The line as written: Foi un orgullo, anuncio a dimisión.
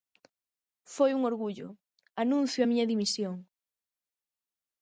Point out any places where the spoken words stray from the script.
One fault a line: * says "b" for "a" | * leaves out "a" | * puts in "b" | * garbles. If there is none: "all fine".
* puts in "miña"